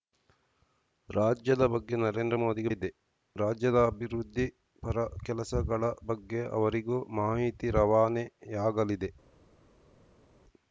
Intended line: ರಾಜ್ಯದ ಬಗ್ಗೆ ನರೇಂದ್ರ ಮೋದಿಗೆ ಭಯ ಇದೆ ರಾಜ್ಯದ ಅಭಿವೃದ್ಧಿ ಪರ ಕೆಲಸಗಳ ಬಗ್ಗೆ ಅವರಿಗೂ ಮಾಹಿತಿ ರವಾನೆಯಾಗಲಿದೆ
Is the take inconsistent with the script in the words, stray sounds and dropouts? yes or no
yes